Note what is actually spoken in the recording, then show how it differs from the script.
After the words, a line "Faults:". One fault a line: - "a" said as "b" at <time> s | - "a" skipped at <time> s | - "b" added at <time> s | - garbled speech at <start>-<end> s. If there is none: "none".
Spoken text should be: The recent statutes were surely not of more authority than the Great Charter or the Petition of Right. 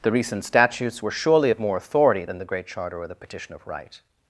The recent statutes were surely of more authority than the Great Charter or the Petition of Right.
Faults:
- "not" skipped at 1.5 s